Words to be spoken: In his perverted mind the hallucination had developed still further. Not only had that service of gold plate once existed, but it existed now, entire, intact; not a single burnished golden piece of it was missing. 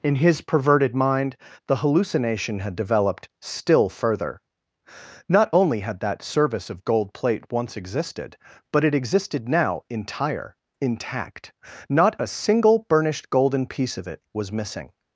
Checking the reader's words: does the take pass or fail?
pass